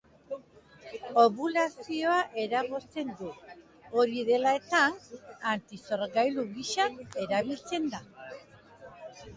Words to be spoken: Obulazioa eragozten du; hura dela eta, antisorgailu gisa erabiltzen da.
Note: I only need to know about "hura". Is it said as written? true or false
false